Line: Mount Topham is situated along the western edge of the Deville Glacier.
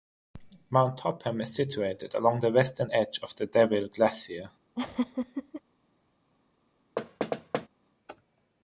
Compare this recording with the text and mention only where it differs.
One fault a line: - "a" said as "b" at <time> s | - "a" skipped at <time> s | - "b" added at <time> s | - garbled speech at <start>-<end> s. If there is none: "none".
none